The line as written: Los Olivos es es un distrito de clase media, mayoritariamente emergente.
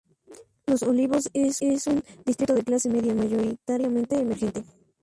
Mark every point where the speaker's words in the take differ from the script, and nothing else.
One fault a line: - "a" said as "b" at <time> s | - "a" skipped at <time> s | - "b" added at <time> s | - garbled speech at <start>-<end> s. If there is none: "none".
none